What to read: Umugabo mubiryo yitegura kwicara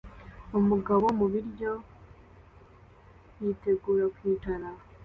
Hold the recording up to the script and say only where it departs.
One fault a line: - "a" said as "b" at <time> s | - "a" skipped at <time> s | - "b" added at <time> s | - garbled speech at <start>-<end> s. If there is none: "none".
none